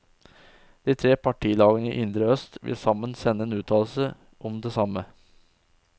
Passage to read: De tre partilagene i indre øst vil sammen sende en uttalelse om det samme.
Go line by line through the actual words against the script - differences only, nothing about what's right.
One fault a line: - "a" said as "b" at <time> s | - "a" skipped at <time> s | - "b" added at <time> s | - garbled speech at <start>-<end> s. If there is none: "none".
none